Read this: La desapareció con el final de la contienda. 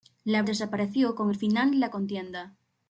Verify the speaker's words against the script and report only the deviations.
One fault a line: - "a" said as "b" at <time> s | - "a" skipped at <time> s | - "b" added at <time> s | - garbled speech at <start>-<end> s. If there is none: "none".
none